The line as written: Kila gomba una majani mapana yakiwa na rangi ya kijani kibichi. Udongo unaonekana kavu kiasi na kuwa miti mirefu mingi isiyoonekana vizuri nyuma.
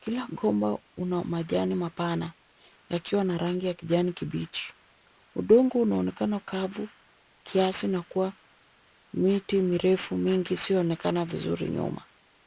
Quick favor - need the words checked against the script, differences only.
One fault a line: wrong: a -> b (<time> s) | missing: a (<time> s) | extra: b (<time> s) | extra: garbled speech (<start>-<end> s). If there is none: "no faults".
no faults